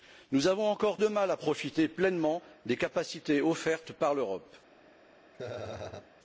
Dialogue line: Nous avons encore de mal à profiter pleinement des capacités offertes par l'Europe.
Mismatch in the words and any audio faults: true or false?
true